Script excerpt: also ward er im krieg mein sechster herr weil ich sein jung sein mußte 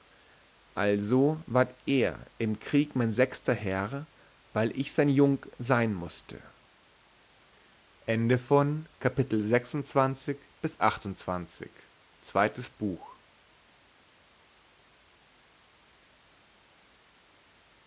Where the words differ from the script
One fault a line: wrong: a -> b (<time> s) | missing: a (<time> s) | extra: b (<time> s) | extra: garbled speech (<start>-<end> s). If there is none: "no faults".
no faults